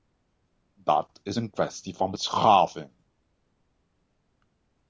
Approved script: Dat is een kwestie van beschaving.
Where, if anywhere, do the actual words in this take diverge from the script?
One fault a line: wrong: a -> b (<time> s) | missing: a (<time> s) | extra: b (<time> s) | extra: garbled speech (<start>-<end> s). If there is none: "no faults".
no faults